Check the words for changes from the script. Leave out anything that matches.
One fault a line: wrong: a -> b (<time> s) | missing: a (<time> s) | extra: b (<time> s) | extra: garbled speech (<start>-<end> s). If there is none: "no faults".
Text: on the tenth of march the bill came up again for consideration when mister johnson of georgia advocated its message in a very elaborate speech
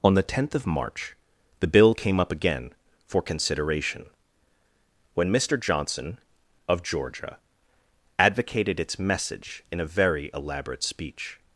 no faults